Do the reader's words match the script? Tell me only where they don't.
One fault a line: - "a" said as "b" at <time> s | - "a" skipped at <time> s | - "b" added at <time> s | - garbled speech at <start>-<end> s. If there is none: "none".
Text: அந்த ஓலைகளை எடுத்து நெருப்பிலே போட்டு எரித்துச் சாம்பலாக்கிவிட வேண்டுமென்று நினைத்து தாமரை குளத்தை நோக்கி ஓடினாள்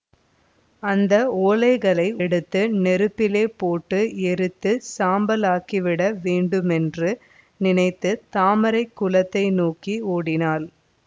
none